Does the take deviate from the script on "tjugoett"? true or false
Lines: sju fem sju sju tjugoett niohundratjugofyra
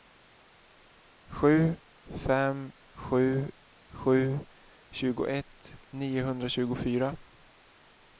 false